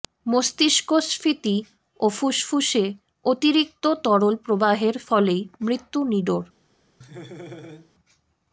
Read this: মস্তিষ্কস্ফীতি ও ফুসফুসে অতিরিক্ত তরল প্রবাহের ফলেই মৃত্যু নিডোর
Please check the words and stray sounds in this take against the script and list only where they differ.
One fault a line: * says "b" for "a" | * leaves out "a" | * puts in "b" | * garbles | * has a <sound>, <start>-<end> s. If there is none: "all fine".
* has a laugh, 7.0-7.9 s